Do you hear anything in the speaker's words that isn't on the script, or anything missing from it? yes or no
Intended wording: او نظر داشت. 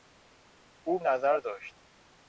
no